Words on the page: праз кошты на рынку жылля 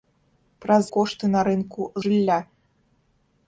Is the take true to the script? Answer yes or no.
yes